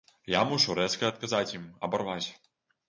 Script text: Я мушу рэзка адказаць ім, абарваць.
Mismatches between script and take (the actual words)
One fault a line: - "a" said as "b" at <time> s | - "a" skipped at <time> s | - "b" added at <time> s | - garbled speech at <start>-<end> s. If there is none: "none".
none